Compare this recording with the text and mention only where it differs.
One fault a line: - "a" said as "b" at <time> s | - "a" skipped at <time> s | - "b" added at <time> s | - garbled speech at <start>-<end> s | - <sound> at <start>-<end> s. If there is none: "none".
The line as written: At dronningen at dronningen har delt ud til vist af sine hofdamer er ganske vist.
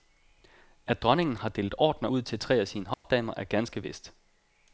- "at dronningen" skipped at 1.4 s
- "ordener" added at 1.8 s
- "vist" said as "tre" at 2.4 s
- dropout at 2.9-3.0 s